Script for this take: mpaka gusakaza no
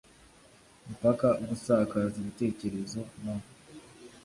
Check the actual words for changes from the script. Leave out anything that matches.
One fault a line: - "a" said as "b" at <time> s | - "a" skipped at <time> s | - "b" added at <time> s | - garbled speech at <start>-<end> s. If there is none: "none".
- "ibitekerezo" added at 2.2 s